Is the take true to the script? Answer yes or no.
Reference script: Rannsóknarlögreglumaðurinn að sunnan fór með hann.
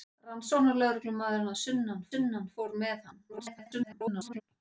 no